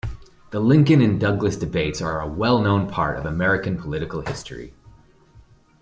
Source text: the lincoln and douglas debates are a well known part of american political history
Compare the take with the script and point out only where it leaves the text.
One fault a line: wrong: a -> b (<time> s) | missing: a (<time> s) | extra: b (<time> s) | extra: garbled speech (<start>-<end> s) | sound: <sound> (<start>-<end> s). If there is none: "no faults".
no faults